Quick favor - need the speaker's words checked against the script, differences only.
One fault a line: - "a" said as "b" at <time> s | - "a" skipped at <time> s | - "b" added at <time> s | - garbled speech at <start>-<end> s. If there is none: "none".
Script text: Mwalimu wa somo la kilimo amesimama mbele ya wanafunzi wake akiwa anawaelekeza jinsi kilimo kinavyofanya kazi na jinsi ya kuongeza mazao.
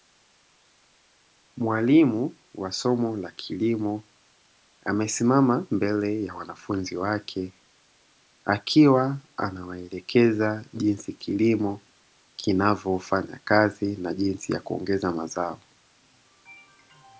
none